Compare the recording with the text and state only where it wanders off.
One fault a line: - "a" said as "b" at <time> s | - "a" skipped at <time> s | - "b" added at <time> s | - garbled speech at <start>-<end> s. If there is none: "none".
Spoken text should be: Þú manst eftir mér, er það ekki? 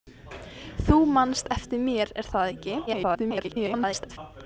- garbled speech at 2.9-4.2 s